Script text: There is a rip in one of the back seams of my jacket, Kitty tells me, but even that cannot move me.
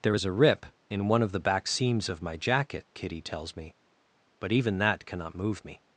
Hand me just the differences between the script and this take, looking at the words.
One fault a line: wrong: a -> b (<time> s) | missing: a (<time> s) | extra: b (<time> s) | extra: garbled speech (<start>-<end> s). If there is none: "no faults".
no faults